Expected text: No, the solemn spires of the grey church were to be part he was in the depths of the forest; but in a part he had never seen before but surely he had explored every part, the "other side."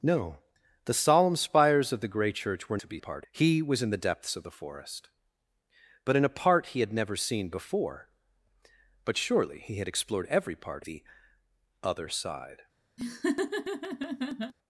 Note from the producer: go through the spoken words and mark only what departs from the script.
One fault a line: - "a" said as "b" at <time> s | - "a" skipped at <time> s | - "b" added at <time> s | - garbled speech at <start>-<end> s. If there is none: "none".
none